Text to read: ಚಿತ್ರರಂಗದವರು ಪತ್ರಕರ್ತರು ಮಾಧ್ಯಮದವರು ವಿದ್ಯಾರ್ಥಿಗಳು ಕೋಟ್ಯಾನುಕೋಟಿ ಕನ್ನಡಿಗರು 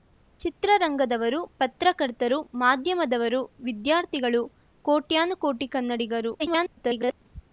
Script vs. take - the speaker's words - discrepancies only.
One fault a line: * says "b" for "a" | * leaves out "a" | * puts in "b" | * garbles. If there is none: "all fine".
* garbles